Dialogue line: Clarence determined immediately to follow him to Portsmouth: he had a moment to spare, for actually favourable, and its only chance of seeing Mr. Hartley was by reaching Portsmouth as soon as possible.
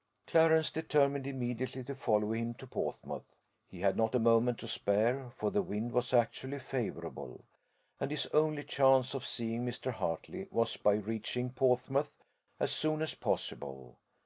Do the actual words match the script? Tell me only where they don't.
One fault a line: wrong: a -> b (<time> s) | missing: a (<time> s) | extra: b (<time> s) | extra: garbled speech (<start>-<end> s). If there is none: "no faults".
extra: not (4.0 s)
extra: the wind was (5.5 s)
wrong: its -> his (8.1 s)